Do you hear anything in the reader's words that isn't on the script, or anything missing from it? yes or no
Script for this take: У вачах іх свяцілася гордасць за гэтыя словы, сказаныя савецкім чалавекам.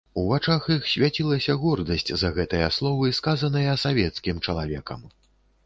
no